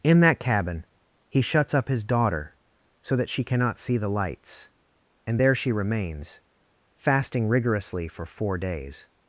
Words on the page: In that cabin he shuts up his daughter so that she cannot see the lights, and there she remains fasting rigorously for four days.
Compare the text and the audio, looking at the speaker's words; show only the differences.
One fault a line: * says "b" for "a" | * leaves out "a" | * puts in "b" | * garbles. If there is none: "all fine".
all fine